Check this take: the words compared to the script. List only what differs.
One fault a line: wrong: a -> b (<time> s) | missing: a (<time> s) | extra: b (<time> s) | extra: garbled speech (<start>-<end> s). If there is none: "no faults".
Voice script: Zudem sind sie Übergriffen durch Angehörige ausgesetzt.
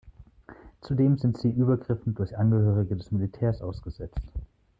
extra: des Militärs (3.0 s)